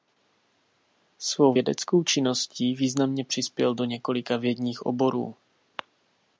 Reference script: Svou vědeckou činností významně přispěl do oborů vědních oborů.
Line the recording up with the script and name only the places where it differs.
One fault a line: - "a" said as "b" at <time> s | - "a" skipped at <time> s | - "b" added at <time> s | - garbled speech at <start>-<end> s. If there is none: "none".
- "oborů" said as "několika" at 3.8 s